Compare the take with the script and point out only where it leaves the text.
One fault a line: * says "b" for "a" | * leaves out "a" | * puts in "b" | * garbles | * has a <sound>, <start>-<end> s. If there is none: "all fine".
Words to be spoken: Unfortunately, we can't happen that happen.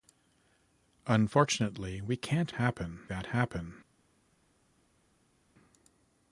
all fine